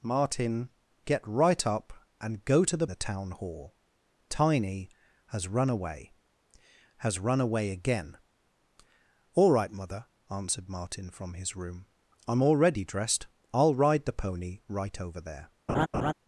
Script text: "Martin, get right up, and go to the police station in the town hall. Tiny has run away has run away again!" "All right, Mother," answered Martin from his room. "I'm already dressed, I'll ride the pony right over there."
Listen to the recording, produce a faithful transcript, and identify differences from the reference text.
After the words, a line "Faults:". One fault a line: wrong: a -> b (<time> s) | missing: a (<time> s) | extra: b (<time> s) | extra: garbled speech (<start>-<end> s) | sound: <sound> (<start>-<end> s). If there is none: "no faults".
"Martin, get right up, and go to the the town hall. Tiny has run away has run away again!" "All right, Mother," answered Martin from his room. "I'm already dressed, I'll ride the pony right over there."
Faults:
missing: police station in (2.9 s)
sound: laugh (15.7-16.1 s)